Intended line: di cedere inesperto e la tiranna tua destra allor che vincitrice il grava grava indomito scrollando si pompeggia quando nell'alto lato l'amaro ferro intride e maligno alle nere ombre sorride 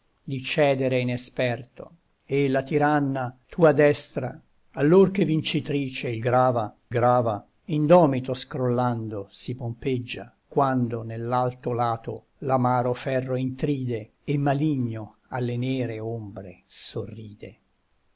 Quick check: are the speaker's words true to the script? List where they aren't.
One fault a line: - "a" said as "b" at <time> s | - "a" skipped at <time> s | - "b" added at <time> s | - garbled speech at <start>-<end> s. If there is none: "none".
none